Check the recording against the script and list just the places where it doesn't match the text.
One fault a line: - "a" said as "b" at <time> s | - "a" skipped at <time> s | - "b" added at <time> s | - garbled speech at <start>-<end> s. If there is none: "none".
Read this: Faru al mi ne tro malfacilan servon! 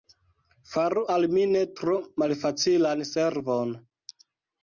none